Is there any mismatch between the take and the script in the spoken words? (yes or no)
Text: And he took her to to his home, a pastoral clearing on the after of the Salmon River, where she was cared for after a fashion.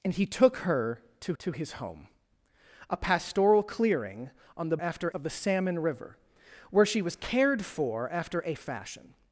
no